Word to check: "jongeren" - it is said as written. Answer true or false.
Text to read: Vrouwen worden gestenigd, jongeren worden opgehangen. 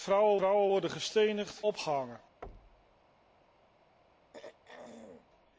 false